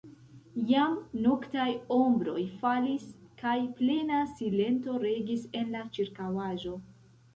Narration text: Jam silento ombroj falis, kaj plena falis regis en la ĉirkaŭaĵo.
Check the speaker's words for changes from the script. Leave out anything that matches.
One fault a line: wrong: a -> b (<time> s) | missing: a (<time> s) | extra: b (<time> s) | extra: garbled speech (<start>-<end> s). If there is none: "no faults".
wrong: silento -> noktaj (1.2 s)
wrong: falis -> silento (4.4 s)